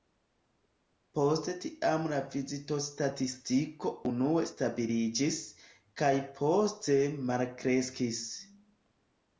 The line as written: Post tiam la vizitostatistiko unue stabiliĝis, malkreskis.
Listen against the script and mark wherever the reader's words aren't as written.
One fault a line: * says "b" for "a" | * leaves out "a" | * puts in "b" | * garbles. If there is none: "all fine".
* puts in "kaj poste"